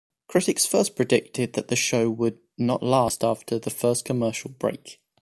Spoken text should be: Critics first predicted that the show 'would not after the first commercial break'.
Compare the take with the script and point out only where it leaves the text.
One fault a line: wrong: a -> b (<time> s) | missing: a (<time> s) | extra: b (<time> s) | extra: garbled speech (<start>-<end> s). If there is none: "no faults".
extra: last (2.8 s)